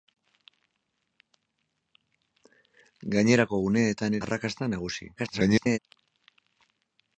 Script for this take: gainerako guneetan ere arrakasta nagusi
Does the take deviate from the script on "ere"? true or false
true